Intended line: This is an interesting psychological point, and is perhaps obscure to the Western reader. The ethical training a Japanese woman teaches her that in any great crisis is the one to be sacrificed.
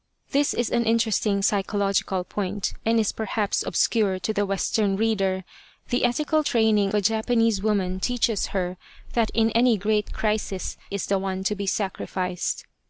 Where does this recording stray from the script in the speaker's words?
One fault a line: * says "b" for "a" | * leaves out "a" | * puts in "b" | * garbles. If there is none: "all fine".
all fine